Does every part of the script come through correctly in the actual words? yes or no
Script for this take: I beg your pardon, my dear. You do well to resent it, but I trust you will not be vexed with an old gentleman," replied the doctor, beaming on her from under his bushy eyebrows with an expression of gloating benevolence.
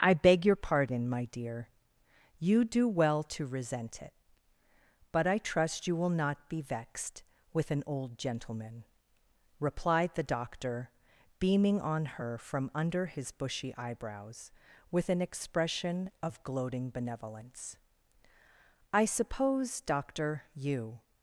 no